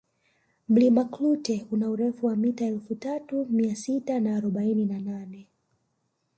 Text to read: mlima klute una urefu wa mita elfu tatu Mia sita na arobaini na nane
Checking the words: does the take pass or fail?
pass